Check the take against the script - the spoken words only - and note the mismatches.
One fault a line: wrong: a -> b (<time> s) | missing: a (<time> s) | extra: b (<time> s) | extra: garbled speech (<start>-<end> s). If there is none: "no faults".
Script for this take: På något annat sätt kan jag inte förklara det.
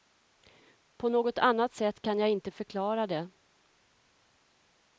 no faults